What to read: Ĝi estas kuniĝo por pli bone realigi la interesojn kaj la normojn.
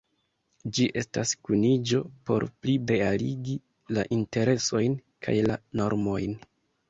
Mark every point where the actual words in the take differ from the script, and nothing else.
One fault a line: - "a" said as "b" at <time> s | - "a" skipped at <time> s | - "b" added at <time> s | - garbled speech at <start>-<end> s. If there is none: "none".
- "bone" skipped at 2.8 s